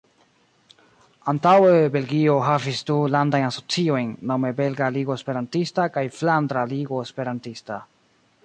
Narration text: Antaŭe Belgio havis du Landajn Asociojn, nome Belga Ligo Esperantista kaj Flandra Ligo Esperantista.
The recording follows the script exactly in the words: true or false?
true